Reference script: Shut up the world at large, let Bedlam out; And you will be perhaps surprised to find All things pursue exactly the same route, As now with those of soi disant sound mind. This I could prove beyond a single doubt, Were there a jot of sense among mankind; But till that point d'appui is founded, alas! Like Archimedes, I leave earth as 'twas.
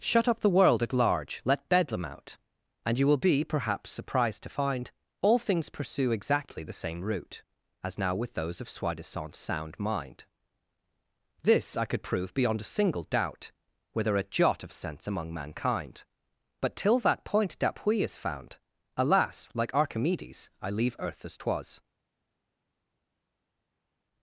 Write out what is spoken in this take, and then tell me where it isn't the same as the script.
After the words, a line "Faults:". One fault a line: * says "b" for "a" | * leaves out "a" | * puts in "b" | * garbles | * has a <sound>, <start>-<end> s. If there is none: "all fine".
Shut up the world at large, let Bedlam out; And you will be perhaps surprised to find All things pursue exactly the same route, As now with those of soi disant sound mind. This I could prove beyond a single doubt, Were there a jot of sense among mankind; But till that point d'appui is found, alas! Like Archimedes, I leave earth as 'twas.
Faults:
* says "found" for "founded"